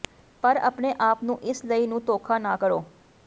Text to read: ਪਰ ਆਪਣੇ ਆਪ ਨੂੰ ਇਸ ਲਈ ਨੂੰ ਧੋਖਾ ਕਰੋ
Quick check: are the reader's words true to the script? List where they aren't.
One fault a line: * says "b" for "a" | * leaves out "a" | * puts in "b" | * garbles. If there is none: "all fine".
* puts in "ਨਾ"